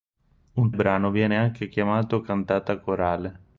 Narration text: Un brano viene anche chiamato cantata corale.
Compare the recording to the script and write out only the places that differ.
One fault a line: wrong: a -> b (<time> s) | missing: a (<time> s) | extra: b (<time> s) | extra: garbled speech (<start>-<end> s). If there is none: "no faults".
no faults